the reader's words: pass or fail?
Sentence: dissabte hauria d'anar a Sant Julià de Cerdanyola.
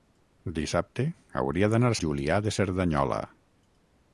fail